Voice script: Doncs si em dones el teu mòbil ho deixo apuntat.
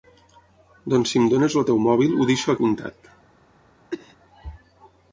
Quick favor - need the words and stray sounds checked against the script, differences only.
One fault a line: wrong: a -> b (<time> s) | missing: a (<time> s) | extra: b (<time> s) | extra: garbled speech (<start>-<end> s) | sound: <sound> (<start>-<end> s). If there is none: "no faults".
sound: cough (3.9-4.2 s)